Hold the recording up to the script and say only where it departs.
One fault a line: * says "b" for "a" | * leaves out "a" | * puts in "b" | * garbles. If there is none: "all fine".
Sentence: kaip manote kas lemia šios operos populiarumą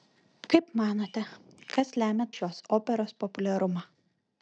all fine